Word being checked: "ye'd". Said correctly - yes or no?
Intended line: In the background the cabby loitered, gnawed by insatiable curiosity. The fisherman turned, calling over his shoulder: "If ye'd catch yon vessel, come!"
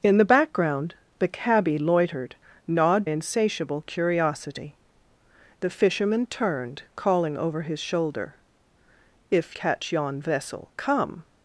no